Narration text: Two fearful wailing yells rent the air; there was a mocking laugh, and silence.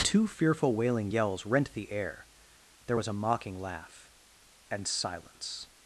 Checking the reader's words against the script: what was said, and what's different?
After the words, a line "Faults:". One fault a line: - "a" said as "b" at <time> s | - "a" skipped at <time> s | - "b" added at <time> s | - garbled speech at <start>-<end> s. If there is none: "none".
Two fearful wailing yells rent the air; there was a mocking laugh, and silence.
Faults:
none